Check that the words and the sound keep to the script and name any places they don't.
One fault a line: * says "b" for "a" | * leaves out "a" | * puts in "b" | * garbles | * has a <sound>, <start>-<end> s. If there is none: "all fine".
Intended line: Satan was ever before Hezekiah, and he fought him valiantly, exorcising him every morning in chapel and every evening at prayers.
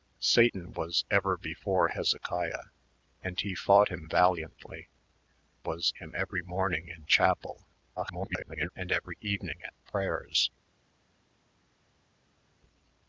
* says "was" for "exorcising"
* garbles